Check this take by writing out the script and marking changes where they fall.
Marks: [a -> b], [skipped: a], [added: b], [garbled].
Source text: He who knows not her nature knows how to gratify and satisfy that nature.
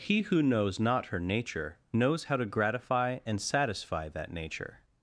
He who knows not her nature knows how to gratify and satisfy that nature.